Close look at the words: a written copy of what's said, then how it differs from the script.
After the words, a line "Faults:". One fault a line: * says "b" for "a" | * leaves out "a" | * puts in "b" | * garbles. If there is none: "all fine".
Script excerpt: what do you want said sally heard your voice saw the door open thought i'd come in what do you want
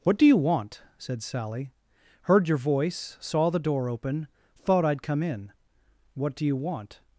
what do you want said sally heard your voice saw the door open thought i'd come in what do you want
Faults:
all fine